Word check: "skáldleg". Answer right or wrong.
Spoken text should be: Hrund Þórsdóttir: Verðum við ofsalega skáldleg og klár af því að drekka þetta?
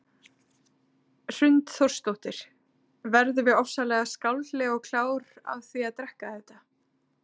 right